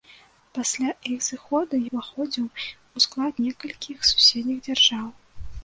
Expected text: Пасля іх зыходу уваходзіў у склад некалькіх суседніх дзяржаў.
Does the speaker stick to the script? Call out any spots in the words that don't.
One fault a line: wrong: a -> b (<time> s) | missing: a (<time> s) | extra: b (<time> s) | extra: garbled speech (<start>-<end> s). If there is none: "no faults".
no faults